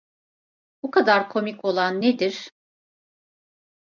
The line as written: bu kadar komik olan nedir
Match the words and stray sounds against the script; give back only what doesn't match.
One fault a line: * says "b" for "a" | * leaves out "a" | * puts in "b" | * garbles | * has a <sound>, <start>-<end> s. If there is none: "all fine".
all fine